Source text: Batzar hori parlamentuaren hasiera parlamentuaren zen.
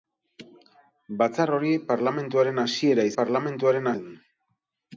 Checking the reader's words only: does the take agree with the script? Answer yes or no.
yes